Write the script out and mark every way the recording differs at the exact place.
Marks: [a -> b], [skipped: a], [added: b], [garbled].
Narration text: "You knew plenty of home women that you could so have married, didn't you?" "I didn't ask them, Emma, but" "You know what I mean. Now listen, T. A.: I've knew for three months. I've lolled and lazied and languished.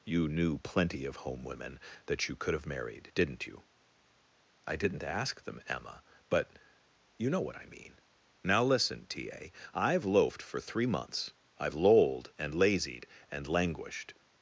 "You knew plenty of home women that you could [skipped: so] have married, didn't you?" "I didn't ask them, Emma, but" "You know what I mean. Now listen, T. A.: I've [knew -> loafed] for three months. I've lolled and lazied and languished.